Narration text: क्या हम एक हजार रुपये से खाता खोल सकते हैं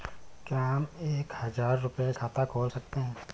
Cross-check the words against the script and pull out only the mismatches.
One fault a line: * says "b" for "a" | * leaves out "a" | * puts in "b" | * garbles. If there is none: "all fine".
* leaves out "से"